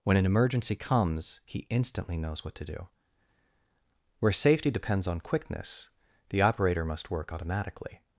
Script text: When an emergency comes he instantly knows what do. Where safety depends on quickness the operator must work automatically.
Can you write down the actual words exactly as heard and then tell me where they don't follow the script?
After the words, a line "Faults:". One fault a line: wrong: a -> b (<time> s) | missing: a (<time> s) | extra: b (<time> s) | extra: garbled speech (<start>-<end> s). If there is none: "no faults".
When an emergency comes he instantly knows what to do. Where safety depends on quickness the operator must work automatically.
Faults:
extra: to (2.5 s)